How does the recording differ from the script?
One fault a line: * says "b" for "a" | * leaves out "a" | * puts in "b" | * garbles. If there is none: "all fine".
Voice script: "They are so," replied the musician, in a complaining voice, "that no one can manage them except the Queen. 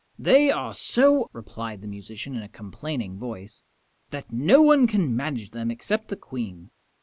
all fine